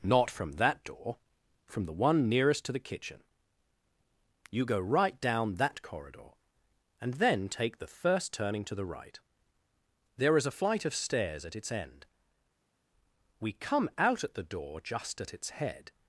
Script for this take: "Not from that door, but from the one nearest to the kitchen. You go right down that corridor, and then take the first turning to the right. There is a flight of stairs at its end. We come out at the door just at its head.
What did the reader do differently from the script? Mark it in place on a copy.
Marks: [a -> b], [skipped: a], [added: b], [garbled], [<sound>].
"Not from that door, [skipped: but] from the one nearest to the kitchen. You go right down that corridor, and then take the first turning to the right. There is a flight of stairs at its end. We come out at the door just at its head.